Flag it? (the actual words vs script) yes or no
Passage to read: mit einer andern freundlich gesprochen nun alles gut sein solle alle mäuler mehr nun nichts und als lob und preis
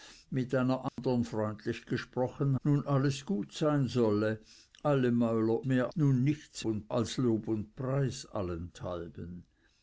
no